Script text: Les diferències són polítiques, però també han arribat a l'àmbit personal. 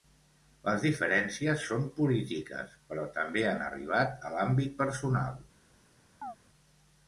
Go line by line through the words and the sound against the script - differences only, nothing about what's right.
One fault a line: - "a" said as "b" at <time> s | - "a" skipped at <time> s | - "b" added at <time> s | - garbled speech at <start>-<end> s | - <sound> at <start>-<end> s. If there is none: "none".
- chirp at 6.2-6.4 s